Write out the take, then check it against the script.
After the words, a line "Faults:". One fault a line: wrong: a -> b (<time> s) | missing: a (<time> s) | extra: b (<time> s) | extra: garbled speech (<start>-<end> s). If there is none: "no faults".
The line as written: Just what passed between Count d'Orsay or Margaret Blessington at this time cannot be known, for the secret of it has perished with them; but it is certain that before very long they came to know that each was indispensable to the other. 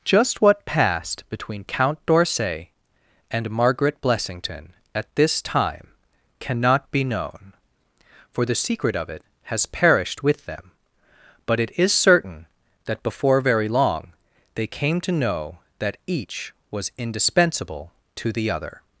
Just what passed between Count d'Orsay and Margaret Blessington at this time cannot be known, for the secret of it has perished with them; but it is certain that before very long they came to know that each was indispensable to the other.
Faults:
wrong: or -> and (3.3 s)